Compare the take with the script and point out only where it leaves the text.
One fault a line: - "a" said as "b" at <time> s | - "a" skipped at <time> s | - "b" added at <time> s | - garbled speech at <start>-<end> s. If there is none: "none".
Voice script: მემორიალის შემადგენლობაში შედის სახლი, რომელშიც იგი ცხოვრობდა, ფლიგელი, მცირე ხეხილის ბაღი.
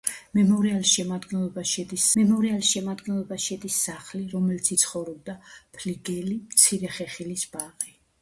- "მემორიალის შემადგენლობაში შედის" added at 2.2 s
- "იგი" skipped at 4.7 s